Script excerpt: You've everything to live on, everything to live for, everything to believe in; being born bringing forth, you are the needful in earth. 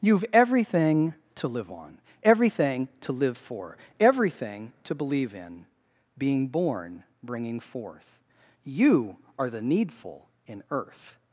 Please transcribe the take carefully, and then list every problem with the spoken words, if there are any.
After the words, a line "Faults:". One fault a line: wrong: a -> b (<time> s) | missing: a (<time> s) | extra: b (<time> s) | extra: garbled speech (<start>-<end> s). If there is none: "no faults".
You've everything to live on, everything to live for, everything to believe in; being born bringing forth, you are the needful in earth.
Faults:
no faults